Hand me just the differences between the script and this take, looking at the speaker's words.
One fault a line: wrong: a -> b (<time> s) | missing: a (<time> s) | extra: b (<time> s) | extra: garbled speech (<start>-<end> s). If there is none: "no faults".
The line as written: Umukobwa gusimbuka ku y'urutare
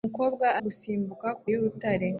no faults